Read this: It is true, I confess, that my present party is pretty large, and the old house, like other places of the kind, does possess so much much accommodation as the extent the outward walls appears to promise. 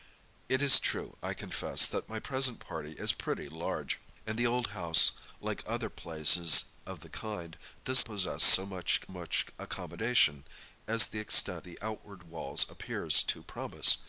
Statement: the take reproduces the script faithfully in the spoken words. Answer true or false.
true